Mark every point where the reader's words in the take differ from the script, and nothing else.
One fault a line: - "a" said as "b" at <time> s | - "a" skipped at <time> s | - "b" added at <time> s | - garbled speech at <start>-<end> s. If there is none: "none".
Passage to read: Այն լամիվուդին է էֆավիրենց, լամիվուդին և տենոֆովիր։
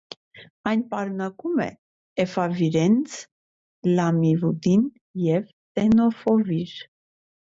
- "լամիվուդին" said as "պարունակում" at 0.9 s